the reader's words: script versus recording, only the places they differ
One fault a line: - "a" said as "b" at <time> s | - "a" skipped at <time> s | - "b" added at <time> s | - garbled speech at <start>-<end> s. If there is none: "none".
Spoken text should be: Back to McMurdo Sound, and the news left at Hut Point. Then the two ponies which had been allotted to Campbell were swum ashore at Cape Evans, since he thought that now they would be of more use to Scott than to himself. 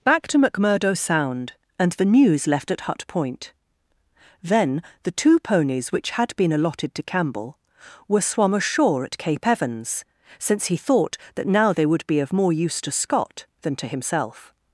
none